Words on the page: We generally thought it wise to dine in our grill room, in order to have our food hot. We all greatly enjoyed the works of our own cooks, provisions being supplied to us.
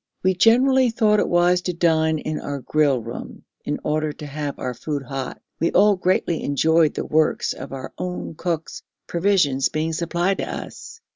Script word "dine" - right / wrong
right